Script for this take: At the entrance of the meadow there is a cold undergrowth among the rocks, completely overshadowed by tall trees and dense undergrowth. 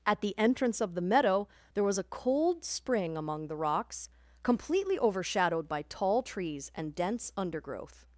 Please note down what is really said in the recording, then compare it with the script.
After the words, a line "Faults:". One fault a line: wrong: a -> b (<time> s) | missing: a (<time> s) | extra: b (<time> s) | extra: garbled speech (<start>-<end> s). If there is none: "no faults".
At the entrance of the meadow there was a cold spring among the rocks, completely overshadowed by tall trees and dense undergrowth.
Faults:
wrong: is -> was (1.8 s)
wrong: undergrowth -> spring (2.6 s)